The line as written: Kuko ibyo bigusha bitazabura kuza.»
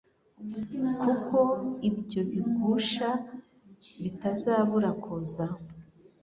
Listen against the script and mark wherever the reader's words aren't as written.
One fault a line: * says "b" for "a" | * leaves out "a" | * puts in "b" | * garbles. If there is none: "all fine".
all fine